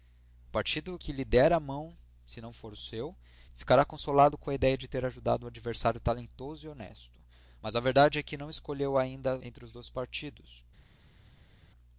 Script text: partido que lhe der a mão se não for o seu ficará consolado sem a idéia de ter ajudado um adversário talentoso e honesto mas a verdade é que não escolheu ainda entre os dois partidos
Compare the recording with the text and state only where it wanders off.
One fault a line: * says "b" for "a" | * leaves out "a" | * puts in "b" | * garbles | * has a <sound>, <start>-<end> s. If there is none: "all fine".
* says "com" for "sem"